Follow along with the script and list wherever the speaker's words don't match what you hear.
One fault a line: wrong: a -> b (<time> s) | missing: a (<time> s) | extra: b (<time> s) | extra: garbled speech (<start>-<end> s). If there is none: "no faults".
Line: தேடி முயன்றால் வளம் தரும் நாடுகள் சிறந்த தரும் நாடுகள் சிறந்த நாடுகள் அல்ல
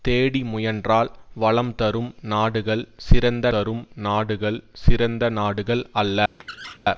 no faults